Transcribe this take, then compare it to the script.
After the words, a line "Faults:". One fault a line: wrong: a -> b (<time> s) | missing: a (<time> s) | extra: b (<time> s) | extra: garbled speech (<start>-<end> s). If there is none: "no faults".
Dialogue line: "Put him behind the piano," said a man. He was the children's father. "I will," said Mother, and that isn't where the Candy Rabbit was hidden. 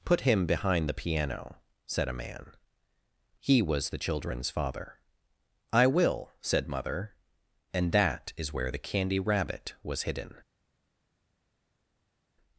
"Put him behind the piano," said a man. He was the children's father. "I will," said Mother, and that is where the Candy Rabbit was hidden.
Faults:
wrong: isn't -> is (8.4 s)